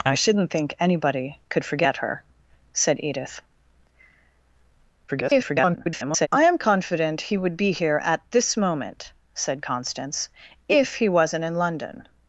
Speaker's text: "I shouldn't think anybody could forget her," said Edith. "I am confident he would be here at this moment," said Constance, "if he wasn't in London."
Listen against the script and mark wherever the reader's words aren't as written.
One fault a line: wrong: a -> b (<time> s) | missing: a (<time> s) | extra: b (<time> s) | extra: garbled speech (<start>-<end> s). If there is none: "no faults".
extra: garbled speech (5.1-6.3 s)